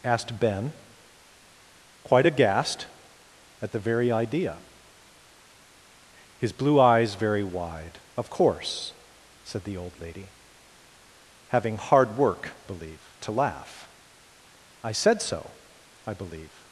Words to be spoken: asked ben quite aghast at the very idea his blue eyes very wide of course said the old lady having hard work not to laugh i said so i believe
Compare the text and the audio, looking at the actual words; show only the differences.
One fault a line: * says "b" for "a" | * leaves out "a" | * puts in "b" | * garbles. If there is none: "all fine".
* says "believe" for "not"